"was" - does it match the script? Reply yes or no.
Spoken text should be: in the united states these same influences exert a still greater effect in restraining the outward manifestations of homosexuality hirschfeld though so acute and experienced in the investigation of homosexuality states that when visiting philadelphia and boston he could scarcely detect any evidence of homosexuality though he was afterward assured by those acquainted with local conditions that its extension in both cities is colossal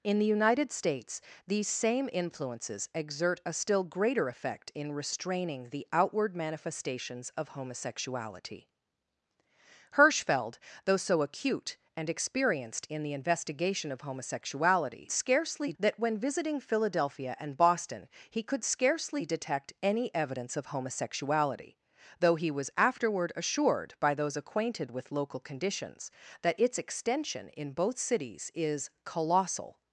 yes